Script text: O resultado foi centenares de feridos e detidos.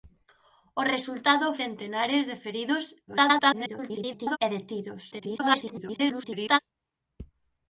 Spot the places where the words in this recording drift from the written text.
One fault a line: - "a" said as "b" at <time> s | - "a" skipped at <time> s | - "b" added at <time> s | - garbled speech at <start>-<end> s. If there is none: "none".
- "foi" skipped at 1.5 s
- garbled speech at 3.1-4.4 s
- garbled speech at 5.1-6.6 s